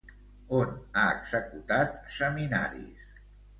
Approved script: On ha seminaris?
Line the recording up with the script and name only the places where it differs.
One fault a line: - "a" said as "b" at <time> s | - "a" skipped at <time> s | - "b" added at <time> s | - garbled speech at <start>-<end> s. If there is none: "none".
- "executat" added at 1.1 s